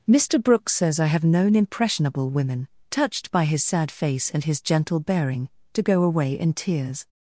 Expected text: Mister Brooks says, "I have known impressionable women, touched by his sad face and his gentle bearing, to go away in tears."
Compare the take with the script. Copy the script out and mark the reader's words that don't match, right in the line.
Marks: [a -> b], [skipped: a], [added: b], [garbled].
Mister Brooks says, "I have known impressionable women, touched by his sad face and his gentle bearing, to go away in tears."